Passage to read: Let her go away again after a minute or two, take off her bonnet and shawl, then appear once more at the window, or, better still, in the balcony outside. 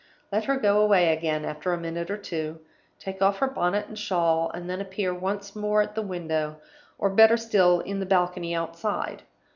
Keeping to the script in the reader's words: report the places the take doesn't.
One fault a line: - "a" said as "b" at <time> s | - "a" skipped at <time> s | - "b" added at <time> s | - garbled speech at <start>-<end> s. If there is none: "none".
- "and" added at 4.5 s